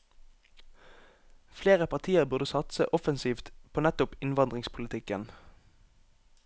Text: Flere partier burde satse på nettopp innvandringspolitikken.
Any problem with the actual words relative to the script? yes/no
yes